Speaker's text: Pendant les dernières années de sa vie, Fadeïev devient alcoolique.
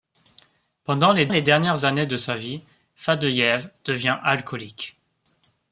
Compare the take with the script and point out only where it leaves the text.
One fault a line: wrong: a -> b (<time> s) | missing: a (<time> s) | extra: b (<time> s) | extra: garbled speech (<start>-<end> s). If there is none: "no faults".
extra: les (1.3 s)